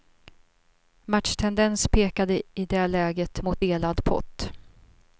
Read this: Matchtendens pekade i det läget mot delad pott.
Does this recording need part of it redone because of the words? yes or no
no